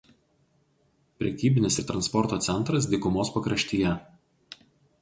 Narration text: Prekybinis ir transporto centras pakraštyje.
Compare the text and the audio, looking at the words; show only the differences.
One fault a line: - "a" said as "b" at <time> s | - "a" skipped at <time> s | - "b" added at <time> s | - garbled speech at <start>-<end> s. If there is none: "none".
- "dykumos" added at 2.9 s